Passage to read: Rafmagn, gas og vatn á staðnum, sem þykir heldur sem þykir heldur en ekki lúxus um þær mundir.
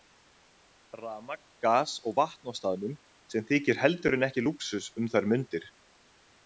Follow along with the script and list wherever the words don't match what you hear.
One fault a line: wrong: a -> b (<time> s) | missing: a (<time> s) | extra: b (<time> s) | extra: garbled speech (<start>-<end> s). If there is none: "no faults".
missing: sem þykir heldur (4.2 s)